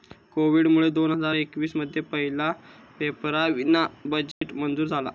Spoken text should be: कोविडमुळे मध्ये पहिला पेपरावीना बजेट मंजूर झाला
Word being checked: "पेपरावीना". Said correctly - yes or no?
yes